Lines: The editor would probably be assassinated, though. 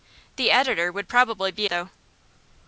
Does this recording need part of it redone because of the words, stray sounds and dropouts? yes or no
yes